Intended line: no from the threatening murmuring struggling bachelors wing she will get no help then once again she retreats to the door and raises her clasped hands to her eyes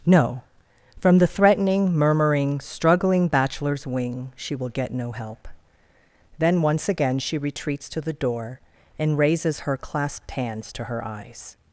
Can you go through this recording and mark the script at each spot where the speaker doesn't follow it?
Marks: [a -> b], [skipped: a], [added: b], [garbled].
no from the threatening murmuring struggling bachelors wing she will get no help then once again she retreats to the door and raises her clasped hands to her eyes